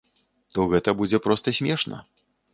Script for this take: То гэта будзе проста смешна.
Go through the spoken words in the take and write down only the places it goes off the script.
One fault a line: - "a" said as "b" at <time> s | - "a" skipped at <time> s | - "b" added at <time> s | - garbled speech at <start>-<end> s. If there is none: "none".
none